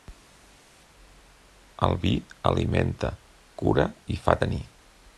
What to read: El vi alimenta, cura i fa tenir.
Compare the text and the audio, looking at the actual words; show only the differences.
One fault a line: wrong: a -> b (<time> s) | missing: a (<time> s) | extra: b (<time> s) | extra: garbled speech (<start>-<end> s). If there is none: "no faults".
no faults